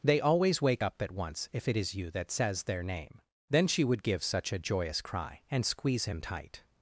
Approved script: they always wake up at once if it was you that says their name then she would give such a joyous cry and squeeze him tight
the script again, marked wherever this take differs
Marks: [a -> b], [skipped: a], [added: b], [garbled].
they always wake up at once if it [was -> is] you that says their name then she would give such a joyous cry and squeeze him tight